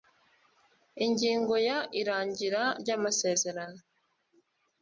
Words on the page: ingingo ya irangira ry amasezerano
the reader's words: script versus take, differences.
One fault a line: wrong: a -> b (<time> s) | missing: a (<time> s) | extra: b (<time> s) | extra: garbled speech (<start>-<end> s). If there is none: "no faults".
no faults